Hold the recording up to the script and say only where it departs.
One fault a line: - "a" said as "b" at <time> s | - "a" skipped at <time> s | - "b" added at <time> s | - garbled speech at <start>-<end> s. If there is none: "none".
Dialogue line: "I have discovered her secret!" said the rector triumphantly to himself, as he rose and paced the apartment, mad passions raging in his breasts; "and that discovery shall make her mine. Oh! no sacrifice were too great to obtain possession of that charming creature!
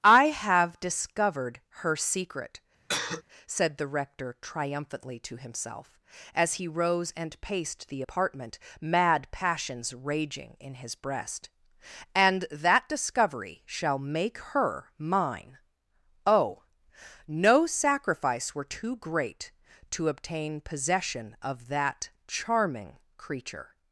- "breasts" said as "breast" at 10.9 s